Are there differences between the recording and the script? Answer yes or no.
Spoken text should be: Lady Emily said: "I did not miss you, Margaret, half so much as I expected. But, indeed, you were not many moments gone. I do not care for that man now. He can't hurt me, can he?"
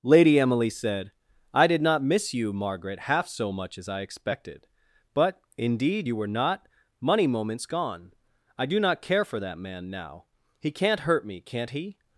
yes